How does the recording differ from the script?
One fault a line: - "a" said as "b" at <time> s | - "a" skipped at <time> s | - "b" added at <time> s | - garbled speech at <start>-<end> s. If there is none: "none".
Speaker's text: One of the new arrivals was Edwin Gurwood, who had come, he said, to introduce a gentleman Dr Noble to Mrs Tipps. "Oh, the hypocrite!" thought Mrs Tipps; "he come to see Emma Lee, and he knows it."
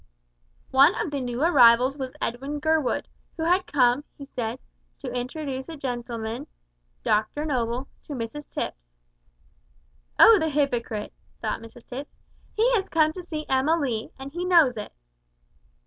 - "has" added at 12.7 s